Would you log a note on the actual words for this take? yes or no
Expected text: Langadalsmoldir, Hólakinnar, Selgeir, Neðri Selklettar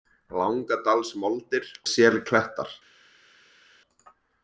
yes